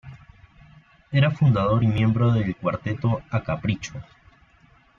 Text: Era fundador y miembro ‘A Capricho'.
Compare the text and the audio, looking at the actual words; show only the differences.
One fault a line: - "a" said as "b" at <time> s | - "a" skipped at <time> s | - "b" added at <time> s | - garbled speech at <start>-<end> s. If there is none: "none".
- "del cuarteto" added at 2.3 s